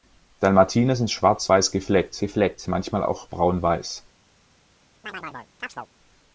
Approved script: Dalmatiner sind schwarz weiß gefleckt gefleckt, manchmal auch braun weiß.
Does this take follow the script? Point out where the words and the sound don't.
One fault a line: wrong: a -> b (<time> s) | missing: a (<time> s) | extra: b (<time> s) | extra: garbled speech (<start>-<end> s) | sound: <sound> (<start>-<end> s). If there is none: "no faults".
sound: chirp (5.0-5.9 s)